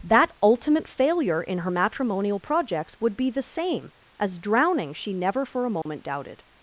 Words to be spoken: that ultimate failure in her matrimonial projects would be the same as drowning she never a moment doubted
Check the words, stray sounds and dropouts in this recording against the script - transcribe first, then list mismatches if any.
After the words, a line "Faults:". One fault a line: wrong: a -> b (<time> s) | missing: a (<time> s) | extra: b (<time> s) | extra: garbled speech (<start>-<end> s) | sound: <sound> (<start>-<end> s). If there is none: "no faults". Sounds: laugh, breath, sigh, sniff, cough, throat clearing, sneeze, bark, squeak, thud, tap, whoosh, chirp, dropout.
that ultimate failure in her matrimonial projects would be the same as drowning she never for a moment doubted
Faults:
extra: for (5.4 s)
sound: dropout (5.8-5.9 s)